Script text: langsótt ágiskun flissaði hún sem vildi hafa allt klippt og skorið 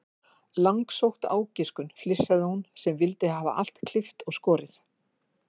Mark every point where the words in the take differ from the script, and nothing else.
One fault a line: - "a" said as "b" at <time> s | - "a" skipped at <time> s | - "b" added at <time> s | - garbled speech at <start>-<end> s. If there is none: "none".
none